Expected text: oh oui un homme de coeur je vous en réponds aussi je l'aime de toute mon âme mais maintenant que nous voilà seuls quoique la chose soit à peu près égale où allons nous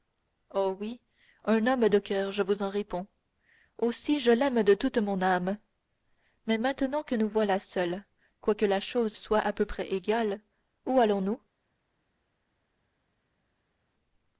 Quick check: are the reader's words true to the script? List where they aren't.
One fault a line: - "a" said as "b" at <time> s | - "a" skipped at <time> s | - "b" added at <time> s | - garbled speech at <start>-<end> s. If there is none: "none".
none